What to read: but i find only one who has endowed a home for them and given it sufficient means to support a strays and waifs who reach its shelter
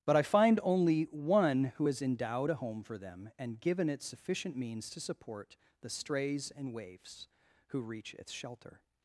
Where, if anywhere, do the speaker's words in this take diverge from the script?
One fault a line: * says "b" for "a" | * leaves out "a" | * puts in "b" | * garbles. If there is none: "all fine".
* says "the" for "a"